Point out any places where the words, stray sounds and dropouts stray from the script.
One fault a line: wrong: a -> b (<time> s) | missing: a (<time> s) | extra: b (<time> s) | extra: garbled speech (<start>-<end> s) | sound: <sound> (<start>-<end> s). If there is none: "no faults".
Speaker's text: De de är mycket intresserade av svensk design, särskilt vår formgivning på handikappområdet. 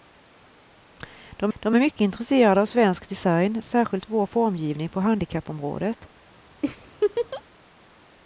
sound: laugh (6.6-7.4 s)